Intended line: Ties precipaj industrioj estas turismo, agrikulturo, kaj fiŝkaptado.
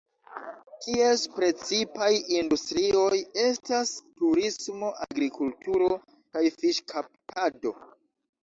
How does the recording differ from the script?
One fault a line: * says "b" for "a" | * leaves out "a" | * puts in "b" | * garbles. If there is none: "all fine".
all fine